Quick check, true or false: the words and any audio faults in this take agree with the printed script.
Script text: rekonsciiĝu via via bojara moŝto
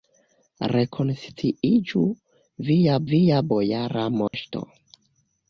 false